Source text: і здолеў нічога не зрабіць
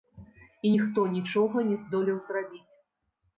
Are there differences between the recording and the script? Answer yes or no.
yes